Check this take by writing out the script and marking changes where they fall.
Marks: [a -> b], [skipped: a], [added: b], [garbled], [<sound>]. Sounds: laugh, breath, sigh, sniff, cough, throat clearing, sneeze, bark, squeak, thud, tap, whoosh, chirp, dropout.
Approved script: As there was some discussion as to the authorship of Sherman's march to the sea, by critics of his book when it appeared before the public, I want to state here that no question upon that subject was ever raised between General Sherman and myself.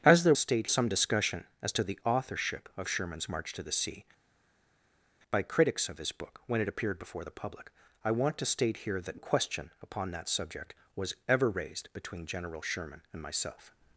As there [was -> state] some discussion as to the authorship of Sherman's march to the sea, by critics of his book when it appeared before the public, I want to state here that [skipped: no] question upon that subject was ever raised between General Sherman and myself.